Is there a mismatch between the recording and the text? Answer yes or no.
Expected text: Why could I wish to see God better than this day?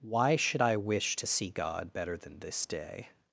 yes